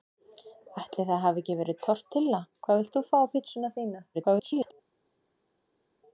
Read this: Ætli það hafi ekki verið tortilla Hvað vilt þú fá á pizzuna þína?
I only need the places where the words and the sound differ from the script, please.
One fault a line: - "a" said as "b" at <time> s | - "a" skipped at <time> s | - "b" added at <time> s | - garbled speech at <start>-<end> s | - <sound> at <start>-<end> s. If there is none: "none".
- garbled speech at 4.1-4.7 s